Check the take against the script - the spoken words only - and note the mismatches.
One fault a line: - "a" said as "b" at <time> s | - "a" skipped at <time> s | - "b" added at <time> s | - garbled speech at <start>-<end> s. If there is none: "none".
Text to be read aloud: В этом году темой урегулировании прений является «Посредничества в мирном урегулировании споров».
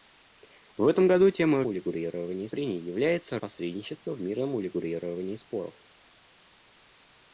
none